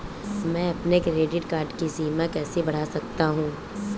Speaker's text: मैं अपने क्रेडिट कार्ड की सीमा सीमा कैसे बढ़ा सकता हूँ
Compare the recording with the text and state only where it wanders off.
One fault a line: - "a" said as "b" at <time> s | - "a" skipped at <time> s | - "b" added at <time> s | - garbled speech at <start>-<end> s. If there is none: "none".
- "सीमा" skipped at 2.3 s